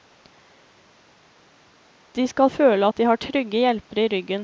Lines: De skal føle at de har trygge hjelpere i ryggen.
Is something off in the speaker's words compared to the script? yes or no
no